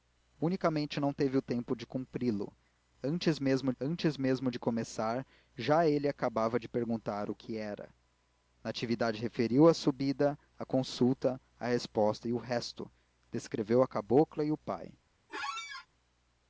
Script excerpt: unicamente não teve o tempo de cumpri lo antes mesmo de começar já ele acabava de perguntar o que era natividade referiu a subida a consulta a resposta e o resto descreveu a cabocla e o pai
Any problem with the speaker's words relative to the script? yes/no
yes